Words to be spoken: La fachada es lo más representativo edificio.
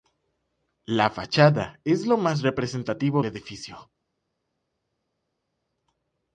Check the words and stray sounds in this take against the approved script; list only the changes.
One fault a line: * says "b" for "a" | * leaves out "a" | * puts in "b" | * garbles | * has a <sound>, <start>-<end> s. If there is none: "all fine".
all fine